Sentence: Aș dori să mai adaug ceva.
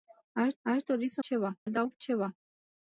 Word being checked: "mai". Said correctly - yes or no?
no